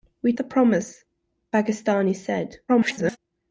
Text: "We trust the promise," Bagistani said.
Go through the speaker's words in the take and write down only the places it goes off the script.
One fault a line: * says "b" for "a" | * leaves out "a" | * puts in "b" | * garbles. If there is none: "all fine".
* leaves out "trust"
* garbles